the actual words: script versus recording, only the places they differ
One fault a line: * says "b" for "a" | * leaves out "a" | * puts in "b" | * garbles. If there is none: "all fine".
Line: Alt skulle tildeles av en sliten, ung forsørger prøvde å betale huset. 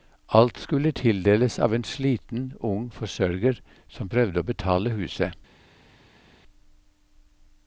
* puts in "som"